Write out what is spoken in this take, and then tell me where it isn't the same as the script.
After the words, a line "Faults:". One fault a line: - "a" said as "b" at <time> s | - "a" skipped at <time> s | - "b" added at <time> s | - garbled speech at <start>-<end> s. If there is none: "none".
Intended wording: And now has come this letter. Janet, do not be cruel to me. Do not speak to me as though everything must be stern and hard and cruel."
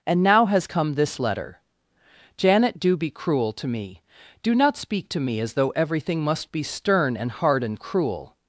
And now has come this letter. Janet, do be cruel to me. Do not speak to me as though everything must be stern and hard and cruel."
Faults:
- "not" skipped at 3.0 s